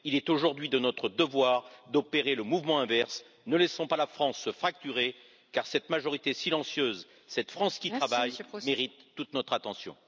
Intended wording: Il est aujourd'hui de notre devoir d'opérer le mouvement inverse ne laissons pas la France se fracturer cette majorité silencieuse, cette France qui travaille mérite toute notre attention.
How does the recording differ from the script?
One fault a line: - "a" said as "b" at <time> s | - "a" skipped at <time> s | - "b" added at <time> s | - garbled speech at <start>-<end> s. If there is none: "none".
- "car" added at 5.5 s